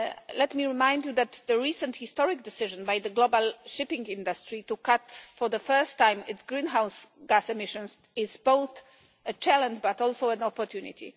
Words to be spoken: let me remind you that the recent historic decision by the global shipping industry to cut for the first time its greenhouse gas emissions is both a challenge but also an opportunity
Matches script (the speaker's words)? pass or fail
pass